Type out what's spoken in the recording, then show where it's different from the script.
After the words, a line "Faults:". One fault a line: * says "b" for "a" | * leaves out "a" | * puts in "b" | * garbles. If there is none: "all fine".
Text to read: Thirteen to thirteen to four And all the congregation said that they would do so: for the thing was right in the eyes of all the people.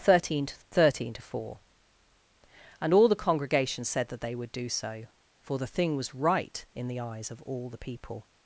Thirteen to thirteen to four And all the congregation said that they would do so: for the thing was right in the eyes of all the people.
Faults:
all fine